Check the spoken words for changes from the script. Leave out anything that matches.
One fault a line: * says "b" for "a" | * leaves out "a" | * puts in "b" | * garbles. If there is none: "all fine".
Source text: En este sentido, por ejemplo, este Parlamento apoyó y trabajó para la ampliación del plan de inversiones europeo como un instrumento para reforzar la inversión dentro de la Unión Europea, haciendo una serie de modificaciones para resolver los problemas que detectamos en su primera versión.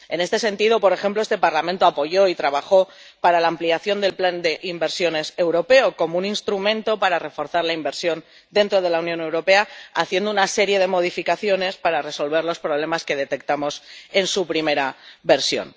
all fine